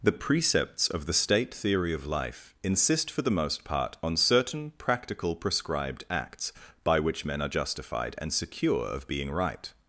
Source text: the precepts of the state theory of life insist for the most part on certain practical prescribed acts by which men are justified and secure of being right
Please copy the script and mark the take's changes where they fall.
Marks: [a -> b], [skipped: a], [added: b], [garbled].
the precepts of the state theory of life insist for the most part on certain practical prescribed acts by which men are justified and secure of being right